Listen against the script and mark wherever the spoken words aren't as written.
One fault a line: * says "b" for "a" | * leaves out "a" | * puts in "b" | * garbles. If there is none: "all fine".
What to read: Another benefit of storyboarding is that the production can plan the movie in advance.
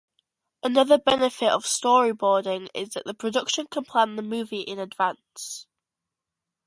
all fine